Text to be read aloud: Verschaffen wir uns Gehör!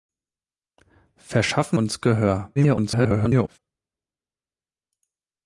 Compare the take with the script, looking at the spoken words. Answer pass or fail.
fail